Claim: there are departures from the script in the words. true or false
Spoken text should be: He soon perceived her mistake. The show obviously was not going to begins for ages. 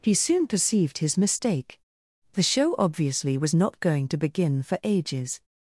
true